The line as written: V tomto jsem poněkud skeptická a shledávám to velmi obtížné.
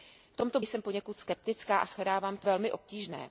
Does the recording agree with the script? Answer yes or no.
yes